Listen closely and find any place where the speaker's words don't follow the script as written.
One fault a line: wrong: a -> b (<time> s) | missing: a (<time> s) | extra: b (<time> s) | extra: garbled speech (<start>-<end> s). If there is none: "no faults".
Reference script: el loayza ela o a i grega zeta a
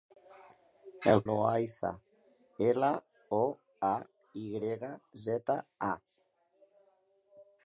no faults